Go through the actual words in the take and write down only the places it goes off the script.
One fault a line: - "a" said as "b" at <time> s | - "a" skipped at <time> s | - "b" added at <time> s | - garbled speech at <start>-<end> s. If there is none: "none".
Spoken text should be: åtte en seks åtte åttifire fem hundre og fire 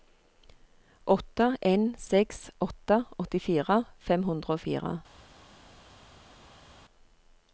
none